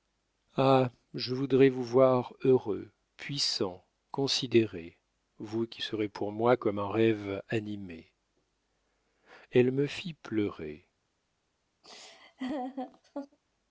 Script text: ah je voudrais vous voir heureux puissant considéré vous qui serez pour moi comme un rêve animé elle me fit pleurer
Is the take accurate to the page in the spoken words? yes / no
yes